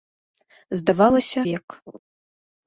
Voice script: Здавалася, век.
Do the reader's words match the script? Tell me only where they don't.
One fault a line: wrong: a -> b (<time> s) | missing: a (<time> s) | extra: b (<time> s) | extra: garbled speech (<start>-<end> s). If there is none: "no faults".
no faults